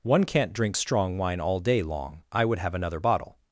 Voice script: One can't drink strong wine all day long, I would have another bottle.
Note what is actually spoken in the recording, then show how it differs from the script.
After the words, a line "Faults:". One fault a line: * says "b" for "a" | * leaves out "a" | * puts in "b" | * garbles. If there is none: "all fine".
One can't drink strong wine all day long, I would have another bottle.
Faults:
all fine